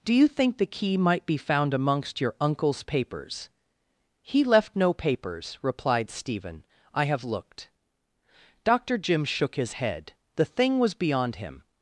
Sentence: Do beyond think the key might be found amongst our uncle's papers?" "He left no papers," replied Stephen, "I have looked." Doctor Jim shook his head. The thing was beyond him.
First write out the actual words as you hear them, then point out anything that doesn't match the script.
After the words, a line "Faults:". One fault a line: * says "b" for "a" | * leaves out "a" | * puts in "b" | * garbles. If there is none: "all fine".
Do you think the key might be found amongst your uncle's papers?" "He left no papers," replied Stephen, "I have looked." Doctor Jim shook his head. The thing was beyond him.
Faults:
* says "you" for "beyond"
* says "your" for "our"